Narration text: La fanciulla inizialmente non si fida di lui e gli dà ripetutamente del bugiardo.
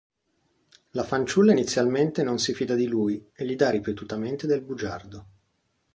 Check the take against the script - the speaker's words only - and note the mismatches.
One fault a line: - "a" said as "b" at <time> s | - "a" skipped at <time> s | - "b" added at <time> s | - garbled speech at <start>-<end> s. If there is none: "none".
none